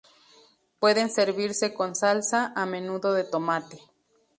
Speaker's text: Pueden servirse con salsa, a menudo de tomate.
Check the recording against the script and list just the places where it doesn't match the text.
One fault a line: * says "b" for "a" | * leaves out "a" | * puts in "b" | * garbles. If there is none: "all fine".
all fine